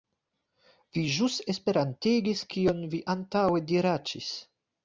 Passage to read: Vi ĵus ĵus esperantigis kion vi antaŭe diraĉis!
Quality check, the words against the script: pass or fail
fail